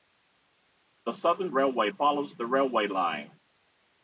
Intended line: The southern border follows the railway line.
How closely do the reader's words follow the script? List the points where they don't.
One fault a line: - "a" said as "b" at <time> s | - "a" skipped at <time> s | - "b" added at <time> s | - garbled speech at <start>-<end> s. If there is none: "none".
- "border" said as "railway" at 1.5 s